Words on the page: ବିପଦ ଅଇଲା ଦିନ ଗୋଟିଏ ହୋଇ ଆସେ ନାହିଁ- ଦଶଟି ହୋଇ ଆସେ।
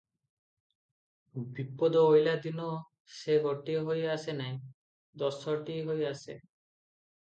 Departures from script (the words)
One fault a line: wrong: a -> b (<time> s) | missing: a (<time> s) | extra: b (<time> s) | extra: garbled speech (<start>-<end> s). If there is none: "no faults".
extra: ସେ (3.1 s)